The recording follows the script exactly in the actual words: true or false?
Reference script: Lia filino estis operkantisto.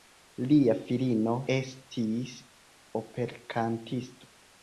true